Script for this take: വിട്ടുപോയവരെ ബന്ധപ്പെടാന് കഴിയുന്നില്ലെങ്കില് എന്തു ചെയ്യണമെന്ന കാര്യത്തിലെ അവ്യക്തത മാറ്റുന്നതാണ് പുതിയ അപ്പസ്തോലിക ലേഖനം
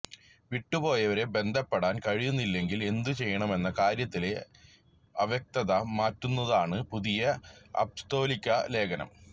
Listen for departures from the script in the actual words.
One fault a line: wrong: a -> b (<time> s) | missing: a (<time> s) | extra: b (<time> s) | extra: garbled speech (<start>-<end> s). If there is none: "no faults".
no faults